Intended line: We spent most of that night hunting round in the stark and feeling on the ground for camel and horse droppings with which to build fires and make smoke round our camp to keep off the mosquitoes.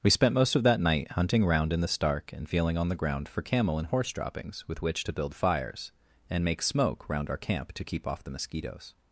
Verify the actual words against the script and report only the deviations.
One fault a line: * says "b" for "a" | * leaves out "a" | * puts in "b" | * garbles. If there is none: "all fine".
all fine